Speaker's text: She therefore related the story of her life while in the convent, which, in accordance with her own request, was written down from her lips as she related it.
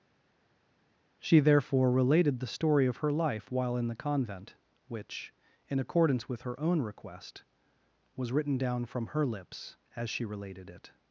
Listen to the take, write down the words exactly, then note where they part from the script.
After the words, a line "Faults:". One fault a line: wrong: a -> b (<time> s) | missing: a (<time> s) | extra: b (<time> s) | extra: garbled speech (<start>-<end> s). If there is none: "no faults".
She therefore related the story of her life while in the convent, which, in accordance with her own request, was written down from her lips as she related it.
Faults:
no faults